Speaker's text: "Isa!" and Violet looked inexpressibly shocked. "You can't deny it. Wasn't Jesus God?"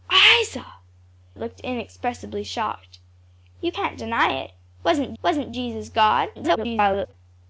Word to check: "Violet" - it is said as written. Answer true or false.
false